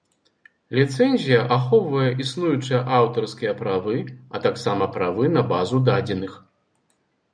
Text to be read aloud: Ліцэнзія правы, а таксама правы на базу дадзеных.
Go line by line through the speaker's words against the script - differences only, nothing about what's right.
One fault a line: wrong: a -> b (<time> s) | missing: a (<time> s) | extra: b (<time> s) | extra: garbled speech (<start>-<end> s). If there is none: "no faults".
extra: ахоўвае існуючыя аўтарскія (1.5 s)